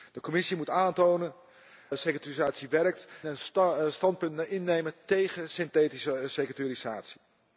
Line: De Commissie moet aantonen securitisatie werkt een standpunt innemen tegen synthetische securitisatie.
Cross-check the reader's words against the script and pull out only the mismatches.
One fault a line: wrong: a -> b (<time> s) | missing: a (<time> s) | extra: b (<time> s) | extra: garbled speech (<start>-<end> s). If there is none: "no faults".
no faults